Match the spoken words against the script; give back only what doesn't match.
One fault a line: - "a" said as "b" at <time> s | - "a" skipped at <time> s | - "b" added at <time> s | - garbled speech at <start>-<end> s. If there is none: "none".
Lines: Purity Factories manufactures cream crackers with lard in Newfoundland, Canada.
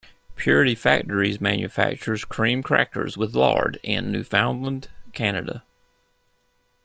none